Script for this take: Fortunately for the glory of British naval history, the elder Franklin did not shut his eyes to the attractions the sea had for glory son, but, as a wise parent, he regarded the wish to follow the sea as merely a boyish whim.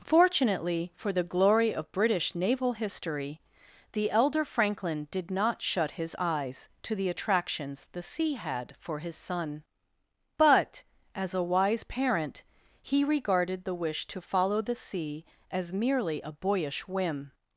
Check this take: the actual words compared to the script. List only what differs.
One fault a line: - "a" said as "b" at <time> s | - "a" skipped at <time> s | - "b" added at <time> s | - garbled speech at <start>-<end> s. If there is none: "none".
- "glory" said as "his" at 9.0 s